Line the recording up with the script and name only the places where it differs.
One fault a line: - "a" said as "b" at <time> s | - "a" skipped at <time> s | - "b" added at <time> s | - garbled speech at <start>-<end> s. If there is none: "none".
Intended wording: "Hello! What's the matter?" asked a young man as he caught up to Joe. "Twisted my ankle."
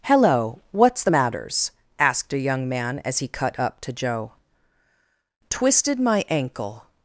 - "matter" said as "matters" at 1.1 s
- "caught" said as "cut" at 3.3 s